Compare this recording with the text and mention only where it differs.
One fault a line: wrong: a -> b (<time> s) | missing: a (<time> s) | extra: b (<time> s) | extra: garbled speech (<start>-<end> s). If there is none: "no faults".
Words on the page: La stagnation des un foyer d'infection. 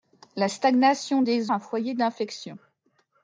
no faults